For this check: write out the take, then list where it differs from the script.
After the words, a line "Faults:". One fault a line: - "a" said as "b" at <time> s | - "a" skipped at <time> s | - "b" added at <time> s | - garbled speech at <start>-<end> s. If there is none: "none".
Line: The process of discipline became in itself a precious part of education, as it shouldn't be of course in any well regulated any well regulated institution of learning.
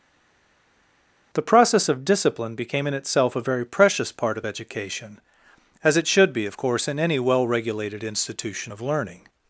The process of discipline became in itself a very precious part of education, as it should be of course in any well regulated institution of learning.
Faults:
- "very" added at 3.4 s
- "shouldn't" said as "should" at 6.1 s
- "any well regulated" skipped at 8.0 s